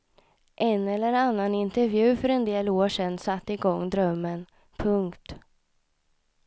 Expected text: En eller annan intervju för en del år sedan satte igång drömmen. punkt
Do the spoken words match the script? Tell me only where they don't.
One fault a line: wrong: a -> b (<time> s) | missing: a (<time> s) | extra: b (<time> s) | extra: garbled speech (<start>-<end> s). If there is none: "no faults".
no faults